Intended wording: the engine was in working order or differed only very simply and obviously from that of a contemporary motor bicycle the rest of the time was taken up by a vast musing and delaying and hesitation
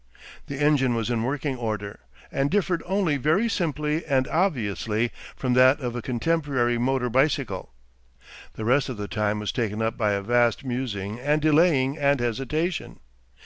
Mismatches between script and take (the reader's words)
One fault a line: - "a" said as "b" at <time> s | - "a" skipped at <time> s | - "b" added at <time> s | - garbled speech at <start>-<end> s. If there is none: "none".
- "or" said as "and" at 2.3 s